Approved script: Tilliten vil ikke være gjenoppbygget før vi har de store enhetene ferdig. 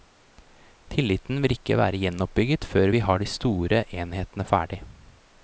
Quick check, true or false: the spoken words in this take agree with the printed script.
true